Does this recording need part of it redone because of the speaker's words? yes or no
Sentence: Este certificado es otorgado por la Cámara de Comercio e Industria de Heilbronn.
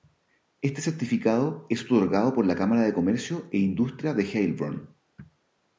no